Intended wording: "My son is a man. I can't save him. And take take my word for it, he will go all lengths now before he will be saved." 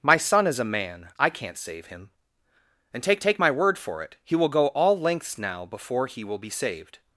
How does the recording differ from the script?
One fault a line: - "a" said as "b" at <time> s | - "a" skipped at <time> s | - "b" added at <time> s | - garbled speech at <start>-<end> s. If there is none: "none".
none